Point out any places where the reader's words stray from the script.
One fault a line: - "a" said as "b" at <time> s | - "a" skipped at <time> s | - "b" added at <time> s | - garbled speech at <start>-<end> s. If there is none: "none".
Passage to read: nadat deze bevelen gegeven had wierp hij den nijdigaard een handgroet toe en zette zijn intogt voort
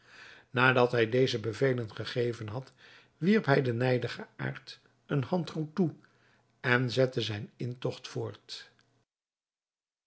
- "hij" added at 0.9 s